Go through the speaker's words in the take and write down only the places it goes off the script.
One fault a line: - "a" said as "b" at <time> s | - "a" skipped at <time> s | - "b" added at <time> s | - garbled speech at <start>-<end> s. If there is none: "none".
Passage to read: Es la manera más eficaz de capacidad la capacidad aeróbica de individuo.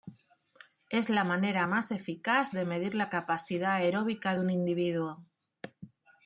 - "capacidad" said as "medir" at 2.7 s
- "un" added at 4.4 s